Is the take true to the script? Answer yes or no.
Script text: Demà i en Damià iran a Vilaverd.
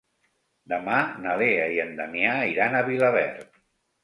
no